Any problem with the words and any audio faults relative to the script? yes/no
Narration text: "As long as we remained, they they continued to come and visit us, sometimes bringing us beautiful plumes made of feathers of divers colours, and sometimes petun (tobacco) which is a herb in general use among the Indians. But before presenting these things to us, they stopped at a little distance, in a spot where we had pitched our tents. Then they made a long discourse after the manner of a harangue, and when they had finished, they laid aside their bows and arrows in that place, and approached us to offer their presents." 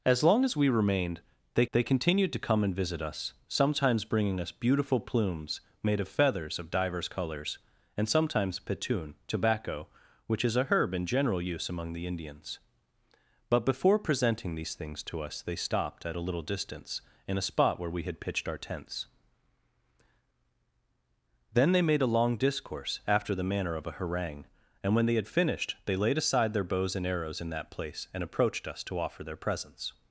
no